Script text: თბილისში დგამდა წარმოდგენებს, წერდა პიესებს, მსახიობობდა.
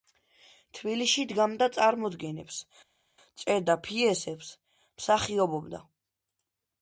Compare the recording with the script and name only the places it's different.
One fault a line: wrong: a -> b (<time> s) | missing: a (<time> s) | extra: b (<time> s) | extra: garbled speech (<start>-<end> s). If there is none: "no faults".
no faults